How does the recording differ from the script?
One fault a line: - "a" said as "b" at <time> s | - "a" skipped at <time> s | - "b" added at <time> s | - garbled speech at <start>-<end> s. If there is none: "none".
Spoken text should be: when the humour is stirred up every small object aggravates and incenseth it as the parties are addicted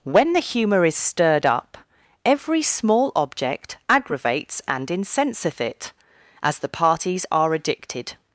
none